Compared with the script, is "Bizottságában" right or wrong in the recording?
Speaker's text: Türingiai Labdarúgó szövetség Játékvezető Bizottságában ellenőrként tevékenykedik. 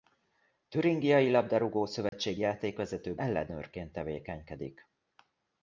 wrong